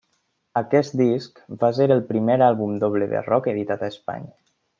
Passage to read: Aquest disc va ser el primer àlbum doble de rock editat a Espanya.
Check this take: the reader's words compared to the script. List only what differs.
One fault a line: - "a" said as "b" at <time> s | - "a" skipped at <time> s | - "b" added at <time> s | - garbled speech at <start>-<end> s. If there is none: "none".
none